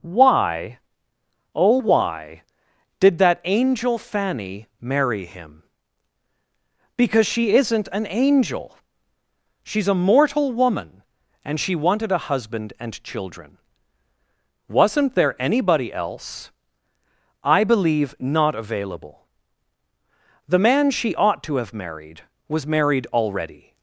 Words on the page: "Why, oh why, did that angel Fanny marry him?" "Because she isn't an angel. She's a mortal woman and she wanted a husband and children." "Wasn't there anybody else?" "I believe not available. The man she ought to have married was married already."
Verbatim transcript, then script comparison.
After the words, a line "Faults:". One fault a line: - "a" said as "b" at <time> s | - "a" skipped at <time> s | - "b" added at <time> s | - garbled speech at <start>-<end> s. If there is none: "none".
"Why, oh why, did that angel Fanny marry him?" "Because she isn't an angel. She's a mortal woman and she wanted a husband and children." "Wasn't there anybody else?" "I believe not available. The man she ought to have married was married already."
Faults:
none